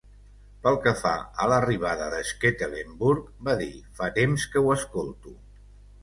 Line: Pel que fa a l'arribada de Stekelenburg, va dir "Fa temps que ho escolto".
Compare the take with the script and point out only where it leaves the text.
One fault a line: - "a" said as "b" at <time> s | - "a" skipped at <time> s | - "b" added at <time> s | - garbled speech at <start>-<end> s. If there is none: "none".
none